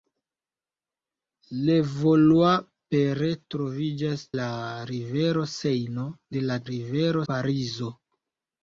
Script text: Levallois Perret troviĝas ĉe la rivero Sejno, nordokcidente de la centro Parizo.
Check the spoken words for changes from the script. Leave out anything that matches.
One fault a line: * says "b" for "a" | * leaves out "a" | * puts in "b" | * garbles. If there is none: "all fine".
* leaves out "ĉe"
* leaves out "nordokcidente"
* says "rivero" for "centro"